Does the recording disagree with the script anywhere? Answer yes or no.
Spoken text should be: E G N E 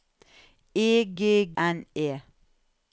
no